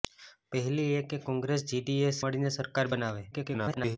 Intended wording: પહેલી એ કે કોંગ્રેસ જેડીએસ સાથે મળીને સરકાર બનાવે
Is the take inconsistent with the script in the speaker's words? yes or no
yes